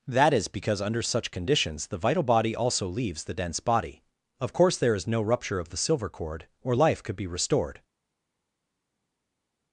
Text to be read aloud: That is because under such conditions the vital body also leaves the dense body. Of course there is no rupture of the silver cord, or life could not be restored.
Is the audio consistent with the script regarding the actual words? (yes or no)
no